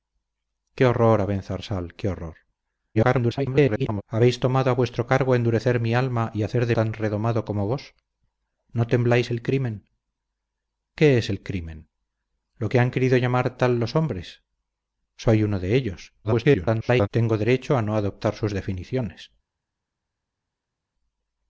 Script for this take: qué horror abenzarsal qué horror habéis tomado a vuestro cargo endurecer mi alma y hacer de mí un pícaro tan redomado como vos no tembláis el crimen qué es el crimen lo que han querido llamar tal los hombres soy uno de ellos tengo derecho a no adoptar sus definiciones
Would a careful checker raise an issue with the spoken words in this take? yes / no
yes